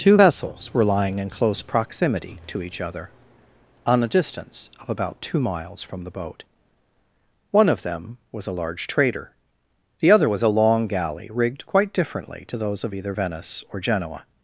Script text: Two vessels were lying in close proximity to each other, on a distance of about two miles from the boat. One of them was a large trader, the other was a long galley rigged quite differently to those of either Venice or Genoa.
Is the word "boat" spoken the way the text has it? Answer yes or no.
yes